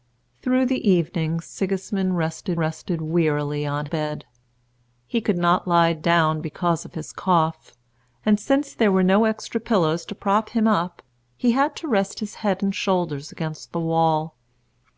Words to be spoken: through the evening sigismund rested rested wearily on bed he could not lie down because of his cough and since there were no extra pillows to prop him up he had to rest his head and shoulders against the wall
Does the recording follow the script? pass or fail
pass